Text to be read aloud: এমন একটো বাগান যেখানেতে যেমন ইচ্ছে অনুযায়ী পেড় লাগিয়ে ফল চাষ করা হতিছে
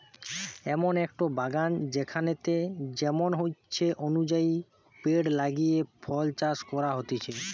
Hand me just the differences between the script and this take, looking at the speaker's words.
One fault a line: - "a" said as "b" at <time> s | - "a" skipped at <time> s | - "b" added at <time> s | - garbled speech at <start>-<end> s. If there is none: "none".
none